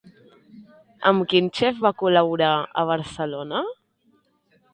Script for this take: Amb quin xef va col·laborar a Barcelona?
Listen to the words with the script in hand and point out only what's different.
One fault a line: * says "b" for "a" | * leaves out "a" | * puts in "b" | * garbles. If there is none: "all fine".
all fine